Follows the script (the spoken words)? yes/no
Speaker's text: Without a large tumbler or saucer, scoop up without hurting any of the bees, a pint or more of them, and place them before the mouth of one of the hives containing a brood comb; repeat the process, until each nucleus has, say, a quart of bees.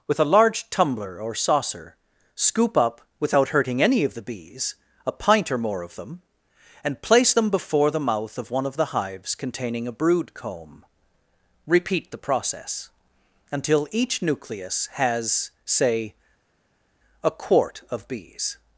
no